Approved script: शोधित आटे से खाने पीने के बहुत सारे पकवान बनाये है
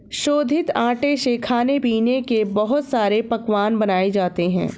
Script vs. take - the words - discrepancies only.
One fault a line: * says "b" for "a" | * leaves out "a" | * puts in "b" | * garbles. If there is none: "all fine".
* puts in "जाते"